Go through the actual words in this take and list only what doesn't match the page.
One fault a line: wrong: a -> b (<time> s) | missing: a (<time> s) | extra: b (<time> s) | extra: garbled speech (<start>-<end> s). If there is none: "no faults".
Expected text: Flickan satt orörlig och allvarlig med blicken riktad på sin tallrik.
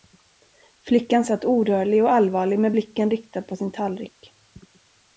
no faults